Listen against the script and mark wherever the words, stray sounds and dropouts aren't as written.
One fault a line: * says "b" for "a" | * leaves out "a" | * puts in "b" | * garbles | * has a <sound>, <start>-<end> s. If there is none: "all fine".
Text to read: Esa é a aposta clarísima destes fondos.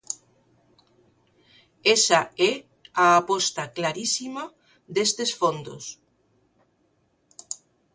all fine